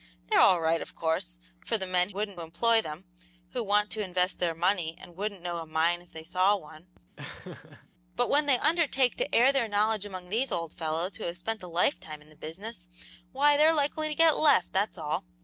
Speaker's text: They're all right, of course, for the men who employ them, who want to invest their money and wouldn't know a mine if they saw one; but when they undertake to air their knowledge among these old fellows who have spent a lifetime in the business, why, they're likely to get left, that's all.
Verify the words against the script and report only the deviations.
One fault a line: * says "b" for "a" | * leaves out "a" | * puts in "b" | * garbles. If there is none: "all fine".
* says "wouldn't" for "who"